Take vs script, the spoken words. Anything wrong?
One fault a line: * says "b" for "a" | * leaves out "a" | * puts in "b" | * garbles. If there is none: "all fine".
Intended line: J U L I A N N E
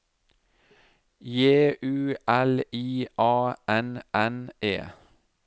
all fine